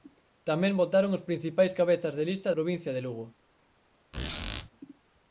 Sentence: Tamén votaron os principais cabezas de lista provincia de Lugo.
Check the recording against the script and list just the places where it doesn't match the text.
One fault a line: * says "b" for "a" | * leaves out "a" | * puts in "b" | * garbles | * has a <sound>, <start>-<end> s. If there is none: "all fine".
* has a squeak, 4.1-4.7 s